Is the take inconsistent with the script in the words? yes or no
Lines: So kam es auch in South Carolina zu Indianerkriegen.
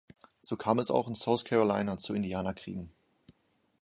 no